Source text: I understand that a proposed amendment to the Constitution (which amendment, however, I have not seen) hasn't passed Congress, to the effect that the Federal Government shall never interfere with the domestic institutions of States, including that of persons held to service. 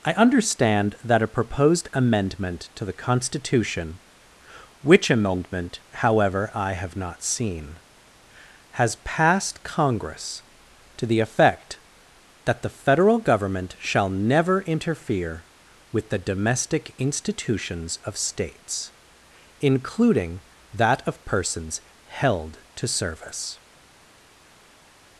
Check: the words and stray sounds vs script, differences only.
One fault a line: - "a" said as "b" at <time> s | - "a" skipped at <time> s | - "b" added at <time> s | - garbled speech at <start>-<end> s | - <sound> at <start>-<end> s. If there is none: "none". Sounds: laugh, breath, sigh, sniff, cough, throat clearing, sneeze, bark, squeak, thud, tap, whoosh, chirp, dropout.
- "hasn't" said as "has" at 8.7 s